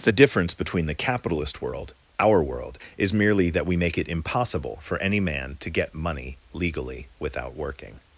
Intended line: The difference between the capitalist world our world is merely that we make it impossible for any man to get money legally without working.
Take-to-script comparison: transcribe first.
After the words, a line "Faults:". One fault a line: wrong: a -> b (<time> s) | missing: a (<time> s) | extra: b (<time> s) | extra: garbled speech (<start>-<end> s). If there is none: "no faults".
The difference between the capitalist world our world is merely that we make it impossible for any man to get money legally without working.
Faults:
no faults